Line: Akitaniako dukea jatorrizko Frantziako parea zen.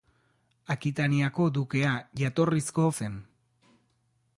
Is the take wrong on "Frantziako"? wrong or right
wrong